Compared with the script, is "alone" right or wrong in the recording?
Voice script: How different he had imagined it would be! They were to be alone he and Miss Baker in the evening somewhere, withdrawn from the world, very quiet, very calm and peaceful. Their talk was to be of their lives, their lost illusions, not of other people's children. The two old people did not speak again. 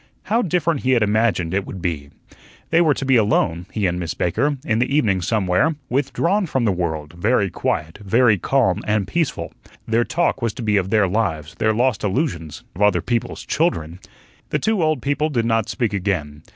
right